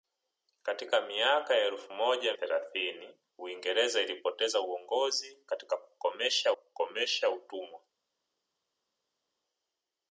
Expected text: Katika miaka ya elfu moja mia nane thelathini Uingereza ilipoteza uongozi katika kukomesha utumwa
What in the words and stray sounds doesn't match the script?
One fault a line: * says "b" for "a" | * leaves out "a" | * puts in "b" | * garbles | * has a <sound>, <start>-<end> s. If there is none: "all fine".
* leaves out "mia nane"
* puts in "kukomesha"